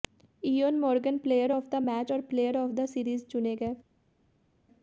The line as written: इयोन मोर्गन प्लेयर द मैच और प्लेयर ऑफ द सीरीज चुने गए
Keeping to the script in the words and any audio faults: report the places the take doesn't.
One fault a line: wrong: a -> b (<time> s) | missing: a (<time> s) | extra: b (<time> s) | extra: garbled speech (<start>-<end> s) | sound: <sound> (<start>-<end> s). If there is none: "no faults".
extra: ऑफ (1.5 s)